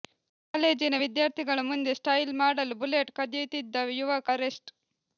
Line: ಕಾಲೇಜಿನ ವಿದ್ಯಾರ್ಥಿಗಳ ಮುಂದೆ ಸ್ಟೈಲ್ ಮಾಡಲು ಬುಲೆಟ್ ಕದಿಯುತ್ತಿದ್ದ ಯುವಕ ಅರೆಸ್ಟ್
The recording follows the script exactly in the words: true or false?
true